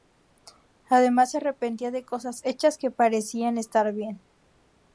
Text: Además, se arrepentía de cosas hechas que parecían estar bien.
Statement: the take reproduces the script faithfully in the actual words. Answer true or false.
true